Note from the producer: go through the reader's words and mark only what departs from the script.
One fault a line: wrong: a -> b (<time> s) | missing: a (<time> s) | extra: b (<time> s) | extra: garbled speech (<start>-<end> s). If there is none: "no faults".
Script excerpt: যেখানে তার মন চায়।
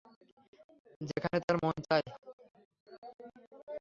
no faults